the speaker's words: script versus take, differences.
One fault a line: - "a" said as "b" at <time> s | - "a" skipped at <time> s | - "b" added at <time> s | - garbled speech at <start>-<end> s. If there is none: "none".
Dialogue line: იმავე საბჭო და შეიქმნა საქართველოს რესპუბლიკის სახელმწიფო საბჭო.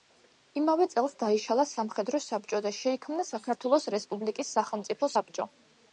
- "წელს დაიშალა სამხედრო" added at 0.9 s